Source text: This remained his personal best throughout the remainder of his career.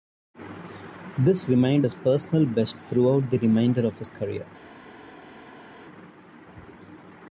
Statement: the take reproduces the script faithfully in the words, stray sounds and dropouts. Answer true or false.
true